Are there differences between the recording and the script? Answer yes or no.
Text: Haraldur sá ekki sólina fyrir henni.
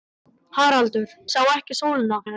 yes